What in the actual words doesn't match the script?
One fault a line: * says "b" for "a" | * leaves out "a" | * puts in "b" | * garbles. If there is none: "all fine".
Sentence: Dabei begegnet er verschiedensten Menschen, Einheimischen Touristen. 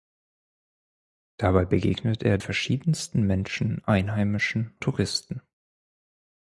all fine